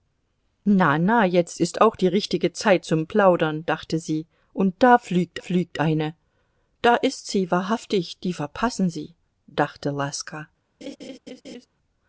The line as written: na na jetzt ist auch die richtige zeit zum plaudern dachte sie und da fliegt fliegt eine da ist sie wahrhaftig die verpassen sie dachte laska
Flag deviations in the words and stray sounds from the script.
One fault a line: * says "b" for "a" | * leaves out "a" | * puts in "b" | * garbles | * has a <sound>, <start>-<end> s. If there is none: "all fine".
* has a laugh, 10.8-11.7 s